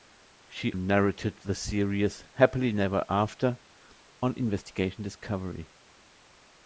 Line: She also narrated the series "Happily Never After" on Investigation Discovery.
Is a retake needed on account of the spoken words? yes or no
yes